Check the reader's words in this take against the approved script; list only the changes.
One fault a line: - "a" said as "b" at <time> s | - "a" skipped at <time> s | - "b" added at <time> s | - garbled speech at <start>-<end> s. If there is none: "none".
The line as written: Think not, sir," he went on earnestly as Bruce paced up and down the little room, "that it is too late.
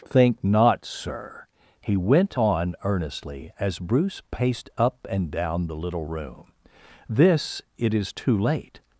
- "that" said as "this" at 7.1 s